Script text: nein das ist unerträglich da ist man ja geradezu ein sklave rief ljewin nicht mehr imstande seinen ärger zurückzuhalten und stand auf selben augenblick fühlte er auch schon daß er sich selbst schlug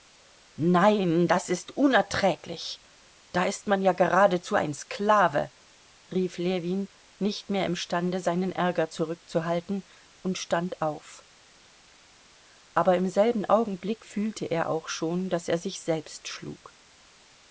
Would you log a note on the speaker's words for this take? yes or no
yes